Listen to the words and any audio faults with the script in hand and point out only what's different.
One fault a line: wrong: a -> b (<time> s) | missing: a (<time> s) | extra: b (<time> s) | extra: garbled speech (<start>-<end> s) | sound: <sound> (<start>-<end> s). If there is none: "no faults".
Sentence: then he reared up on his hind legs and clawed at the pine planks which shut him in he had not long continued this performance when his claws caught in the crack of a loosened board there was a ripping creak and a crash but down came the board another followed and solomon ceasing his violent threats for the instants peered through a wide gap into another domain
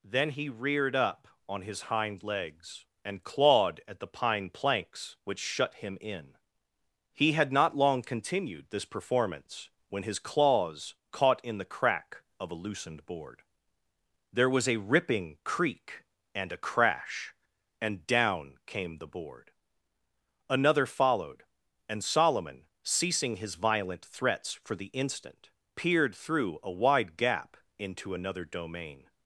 wrong: but -> and (17.8 s)
wrong: instants -> instant (24.9 s)